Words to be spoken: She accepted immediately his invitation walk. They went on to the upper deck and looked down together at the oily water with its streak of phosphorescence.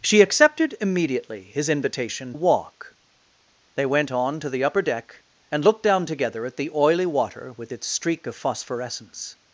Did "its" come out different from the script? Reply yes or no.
no